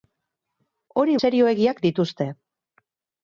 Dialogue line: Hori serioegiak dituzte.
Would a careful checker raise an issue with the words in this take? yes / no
no